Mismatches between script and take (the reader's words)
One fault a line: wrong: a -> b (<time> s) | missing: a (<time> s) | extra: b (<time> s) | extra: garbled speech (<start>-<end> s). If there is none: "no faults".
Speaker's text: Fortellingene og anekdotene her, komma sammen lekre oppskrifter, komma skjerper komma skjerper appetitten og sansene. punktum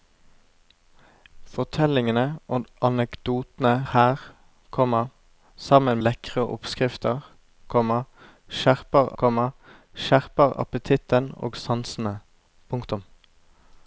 no faults